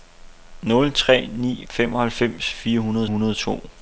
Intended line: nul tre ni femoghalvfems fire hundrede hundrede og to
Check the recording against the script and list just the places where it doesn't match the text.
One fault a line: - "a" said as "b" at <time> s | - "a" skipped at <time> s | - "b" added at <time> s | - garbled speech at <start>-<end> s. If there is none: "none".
none